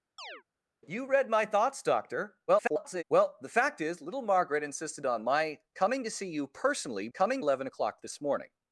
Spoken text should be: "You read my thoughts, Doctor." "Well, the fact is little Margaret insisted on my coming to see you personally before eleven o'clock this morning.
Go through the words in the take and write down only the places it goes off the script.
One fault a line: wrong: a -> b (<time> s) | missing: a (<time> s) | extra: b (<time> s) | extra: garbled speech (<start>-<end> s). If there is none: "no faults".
extra: garbled speech (2.5-3.0 s)
wrong: before -> coming (7.1 s)